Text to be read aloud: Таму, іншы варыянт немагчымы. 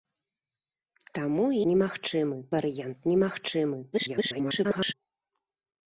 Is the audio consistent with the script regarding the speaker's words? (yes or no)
no